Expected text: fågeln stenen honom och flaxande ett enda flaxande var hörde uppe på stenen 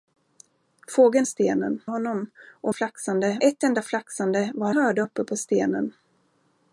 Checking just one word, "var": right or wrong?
right